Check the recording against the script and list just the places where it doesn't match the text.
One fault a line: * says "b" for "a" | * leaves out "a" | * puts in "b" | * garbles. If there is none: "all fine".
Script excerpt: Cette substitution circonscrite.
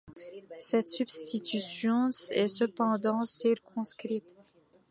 * puts in "est cependant"